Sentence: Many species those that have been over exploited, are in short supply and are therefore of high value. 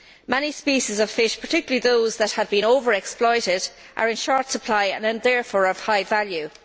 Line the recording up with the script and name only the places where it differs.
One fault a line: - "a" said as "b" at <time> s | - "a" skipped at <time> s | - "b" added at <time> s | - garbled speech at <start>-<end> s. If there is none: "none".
- "of fish particularly" added at 1.0 s